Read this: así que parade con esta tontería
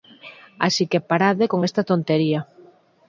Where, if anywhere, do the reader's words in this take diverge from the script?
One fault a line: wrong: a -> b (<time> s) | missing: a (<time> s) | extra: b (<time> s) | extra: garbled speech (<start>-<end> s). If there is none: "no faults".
no faults